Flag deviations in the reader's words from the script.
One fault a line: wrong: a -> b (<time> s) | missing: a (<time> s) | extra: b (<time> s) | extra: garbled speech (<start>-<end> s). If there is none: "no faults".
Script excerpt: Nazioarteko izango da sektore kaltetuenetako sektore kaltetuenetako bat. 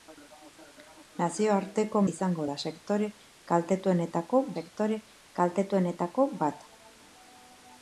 no faults